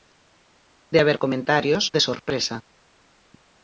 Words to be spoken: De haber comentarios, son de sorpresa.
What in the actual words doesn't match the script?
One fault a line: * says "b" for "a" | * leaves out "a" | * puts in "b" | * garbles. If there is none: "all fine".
* leaves out "son"